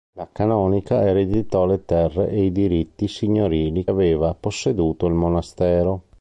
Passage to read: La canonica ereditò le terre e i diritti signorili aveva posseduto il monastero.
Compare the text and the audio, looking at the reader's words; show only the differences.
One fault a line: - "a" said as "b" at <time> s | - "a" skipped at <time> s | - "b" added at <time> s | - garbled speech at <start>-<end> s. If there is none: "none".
none